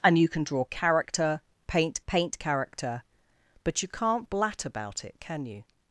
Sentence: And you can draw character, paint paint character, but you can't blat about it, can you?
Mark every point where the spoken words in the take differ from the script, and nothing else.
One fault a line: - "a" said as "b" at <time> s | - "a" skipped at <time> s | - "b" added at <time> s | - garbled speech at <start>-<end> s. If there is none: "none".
none